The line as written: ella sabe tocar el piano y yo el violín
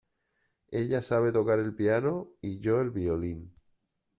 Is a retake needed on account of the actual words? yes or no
no